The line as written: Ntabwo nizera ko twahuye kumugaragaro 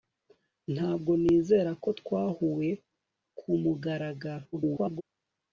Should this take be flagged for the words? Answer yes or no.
yes